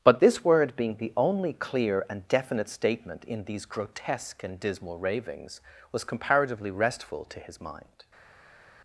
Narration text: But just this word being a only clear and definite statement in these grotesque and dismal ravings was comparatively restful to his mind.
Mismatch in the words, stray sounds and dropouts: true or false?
true